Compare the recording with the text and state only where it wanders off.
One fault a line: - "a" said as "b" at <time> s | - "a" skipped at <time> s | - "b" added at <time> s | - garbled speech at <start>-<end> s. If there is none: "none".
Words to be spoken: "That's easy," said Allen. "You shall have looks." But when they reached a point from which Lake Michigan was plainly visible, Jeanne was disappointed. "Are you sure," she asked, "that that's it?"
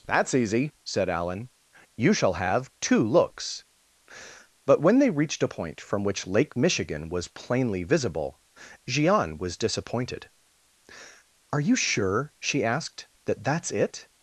- "two" added at 2.8 s